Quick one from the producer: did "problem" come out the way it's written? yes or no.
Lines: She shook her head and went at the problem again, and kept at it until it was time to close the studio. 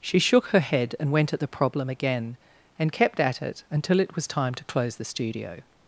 yes